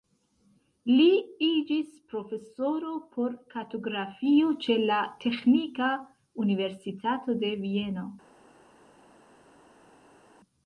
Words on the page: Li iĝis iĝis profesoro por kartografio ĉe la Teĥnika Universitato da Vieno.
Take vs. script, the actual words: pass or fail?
fail